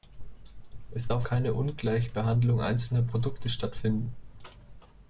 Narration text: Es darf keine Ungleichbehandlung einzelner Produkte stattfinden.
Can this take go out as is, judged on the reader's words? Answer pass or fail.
pass